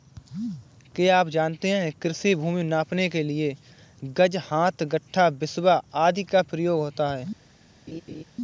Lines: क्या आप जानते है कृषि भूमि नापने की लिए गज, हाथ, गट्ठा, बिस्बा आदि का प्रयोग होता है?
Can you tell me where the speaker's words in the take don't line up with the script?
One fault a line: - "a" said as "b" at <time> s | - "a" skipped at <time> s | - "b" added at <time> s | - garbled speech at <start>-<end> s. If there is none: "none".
- "की" said as "के" at 3.1 s